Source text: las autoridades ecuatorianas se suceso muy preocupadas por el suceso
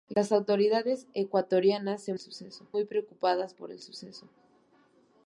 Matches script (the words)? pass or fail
pass